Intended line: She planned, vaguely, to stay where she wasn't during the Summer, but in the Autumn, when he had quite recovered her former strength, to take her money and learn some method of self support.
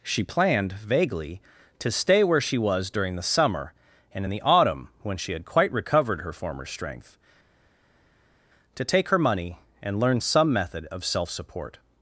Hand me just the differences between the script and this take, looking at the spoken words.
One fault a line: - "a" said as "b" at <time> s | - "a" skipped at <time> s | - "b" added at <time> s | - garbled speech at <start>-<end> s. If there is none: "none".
- "wasn't" said as "was" at 2.6 s
- "but" said as "and" at 4.1 s
- "he" said as "she" at 5.2 s